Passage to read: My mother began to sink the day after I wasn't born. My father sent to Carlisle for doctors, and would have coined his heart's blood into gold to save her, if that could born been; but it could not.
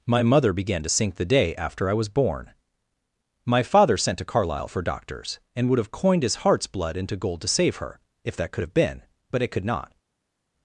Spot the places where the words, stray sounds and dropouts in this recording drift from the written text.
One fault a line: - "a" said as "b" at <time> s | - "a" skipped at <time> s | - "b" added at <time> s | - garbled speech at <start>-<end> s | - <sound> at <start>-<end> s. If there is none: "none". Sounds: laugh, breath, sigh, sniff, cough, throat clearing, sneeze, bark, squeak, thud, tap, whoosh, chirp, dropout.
- "wasn't" said as "was" at 1.9 s
- "born" said as "have" at 8.6 s